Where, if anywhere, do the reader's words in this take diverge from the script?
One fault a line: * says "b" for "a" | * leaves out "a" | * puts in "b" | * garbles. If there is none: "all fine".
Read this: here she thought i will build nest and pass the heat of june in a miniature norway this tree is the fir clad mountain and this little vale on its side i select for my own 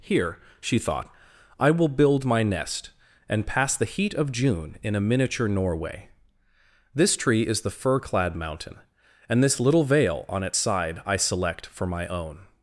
* puts in "my"